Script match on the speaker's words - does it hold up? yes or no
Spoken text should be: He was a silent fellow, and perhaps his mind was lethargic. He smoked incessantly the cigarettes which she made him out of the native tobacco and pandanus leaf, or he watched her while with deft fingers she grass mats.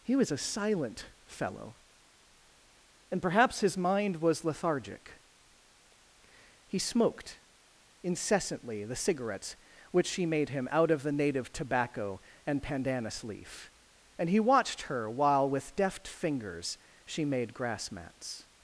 no